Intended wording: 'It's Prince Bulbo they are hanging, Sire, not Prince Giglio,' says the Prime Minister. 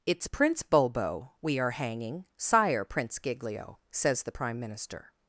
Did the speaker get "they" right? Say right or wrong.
wrong